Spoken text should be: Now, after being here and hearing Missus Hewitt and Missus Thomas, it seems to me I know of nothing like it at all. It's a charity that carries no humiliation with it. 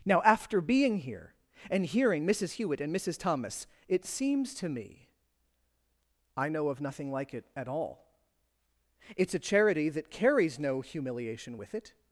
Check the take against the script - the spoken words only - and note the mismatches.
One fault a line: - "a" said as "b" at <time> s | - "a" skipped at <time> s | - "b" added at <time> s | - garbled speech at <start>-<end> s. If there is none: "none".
none